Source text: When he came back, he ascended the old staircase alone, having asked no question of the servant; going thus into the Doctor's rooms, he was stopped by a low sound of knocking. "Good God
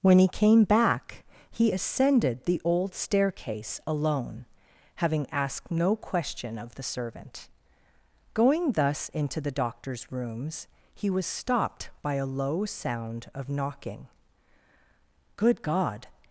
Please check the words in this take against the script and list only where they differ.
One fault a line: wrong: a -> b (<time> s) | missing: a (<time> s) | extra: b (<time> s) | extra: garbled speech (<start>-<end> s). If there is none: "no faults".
no faults